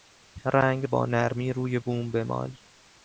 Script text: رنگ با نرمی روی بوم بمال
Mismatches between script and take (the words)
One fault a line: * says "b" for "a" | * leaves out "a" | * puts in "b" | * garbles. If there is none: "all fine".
all fine